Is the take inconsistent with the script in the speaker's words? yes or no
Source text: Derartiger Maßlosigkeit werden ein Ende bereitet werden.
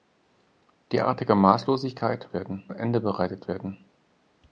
no